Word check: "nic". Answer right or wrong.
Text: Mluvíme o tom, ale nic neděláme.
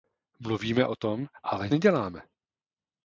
wrong